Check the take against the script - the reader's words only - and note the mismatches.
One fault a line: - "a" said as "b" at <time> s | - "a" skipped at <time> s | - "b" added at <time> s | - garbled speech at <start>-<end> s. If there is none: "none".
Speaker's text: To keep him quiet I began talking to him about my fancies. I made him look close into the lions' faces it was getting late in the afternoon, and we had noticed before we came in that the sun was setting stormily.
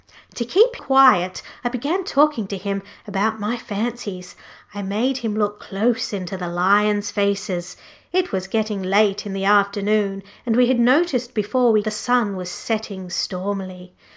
- "him" skipped at 0.8 s
- "came in that" skipped at 11.8 s